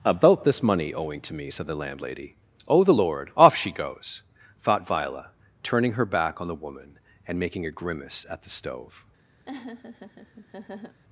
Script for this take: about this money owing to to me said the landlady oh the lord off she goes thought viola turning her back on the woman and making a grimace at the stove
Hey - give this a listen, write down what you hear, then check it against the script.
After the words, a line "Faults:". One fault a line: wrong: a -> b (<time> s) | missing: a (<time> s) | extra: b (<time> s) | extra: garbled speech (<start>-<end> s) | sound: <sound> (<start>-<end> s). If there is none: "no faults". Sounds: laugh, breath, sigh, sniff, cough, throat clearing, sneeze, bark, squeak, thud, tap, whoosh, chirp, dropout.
about this money owing to me said the landlady oh the lord off she goes thought viola turning her back on the woman and making a grimace at the stove
Faults:
missing: to (1.3 s)
sound: laugh (9.5-11.0 s)